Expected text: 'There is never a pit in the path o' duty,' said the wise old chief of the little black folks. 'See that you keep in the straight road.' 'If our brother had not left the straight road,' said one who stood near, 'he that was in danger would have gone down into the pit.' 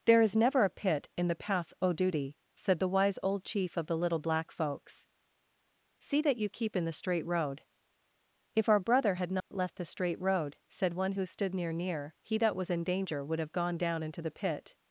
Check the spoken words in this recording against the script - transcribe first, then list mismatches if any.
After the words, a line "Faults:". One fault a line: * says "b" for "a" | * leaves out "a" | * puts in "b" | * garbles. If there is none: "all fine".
'There is never a pit in the path o' duty,' said the wise old chief of the little black folks. 'See that you keep in the straight road.' 'If our brother had not left the straight road,' said one who stood near near, 'he that was in danger would have gone down into the pit.'
Faults:
* puts in "near"